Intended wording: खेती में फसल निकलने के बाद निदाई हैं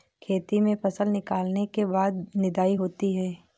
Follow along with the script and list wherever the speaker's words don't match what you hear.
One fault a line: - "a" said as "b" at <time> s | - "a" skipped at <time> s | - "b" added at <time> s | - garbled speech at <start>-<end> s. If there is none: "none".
- "होती" added at 2.7 s